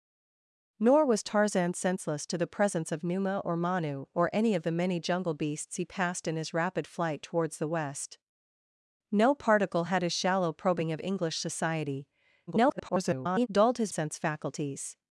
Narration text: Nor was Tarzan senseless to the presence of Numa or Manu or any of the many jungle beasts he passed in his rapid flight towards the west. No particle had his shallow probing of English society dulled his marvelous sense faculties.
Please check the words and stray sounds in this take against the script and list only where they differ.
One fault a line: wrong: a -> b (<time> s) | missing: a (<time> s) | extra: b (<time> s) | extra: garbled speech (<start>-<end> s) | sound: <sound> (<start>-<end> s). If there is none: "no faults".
extra: garbled speech (12.5-13.5 s)
missing: marvelous (13.9 s)